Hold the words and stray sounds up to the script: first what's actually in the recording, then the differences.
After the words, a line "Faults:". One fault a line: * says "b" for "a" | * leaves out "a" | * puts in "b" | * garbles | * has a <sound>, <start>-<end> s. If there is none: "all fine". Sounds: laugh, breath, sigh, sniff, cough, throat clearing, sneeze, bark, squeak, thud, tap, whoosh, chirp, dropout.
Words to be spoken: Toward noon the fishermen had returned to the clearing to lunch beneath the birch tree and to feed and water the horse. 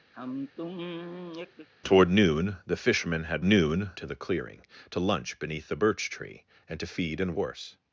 Toward noon the fishermen had noon to the clearing to lunch beneath the birch tree and to feed and horse.
Faults:
* has a sigh, 0.1-1.7 s
* says "noon" for "returned"
* leaves out "water the"